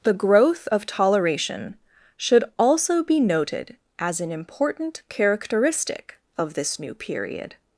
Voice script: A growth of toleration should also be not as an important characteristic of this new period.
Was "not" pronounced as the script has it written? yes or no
no